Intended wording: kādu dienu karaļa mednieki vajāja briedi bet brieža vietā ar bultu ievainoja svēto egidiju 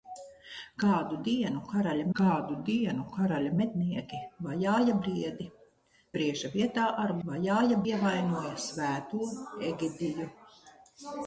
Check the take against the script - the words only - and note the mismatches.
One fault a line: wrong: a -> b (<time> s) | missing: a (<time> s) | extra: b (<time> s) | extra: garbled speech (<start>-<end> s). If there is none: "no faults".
extra: kādu dienu karaļa (2.2 s)
missing: bet (5.5 s)
wrong: bultu -> vajāja (7.3 s)